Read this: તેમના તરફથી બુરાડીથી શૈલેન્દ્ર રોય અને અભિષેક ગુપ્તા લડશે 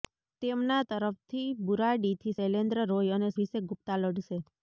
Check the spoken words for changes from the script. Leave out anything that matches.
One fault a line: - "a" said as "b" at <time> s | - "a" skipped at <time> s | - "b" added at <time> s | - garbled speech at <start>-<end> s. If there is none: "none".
none